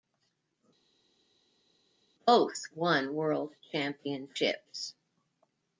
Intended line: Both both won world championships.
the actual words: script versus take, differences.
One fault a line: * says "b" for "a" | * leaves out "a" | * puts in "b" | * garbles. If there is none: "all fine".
* leaves out "both"